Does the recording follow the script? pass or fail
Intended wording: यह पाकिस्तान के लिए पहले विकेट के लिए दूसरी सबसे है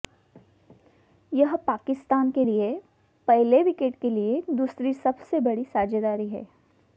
fail